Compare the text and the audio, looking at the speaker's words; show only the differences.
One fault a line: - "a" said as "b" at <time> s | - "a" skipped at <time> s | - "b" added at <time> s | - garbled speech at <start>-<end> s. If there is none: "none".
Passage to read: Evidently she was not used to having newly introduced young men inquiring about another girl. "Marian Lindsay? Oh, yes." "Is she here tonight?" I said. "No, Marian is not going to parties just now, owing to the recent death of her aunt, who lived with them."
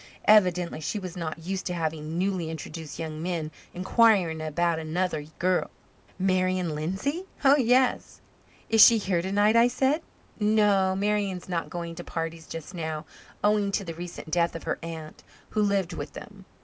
none